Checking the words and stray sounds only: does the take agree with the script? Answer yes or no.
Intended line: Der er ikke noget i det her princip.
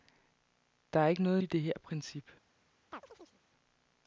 no